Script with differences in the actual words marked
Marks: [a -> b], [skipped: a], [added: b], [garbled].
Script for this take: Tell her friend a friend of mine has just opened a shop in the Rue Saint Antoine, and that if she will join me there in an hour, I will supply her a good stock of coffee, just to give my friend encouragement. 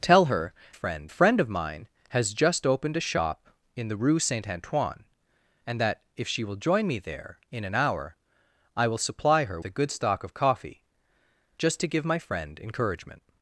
Tell her friend a friend of mine has just opened a shop in the Rue Saint Antoine, and that if she will join me there in an hour, I will supply her a good stock of coffee, just to give my friend encouragement.